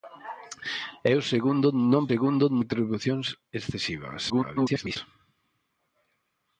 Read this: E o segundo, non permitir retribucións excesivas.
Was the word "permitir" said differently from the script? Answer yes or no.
yes